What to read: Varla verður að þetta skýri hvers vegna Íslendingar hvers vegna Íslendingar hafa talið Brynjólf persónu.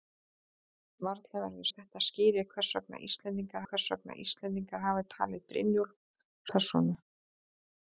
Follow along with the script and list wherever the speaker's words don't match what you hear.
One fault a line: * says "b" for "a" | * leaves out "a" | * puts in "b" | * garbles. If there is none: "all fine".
all fine